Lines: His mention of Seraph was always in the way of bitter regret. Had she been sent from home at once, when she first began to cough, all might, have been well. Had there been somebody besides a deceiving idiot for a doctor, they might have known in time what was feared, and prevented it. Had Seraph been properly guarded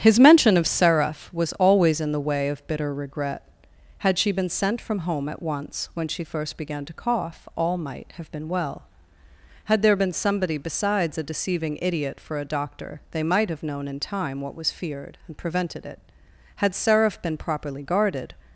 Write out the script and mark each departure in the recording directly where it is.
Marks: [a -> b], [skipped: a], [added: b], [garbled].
His mention of Seraph was always in the way of bitter regret. Had she been sent from home at once, when she first began to cough, all might, have been well. Had there been somebody besides a deceiving idiot for a doctor, they might have known in time what was feared, and prevented it. Had Seraph been properly guarded